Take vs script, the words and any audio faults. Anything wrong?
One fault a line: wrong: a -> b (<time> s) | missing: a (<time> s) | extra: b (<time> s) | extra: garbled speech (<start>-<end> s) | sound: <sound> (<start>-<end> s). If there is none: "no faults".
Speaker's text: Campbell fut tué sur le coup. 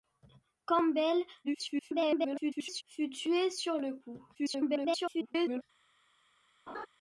extra: garbled speech (1.4-2.8 s)
extra: garbled speech (4.3-5.6 s)
sound: laugh (6.7-6.9 s)